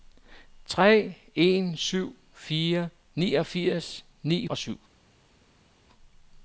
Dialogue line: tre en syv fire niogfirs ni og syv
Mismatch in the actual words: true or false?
false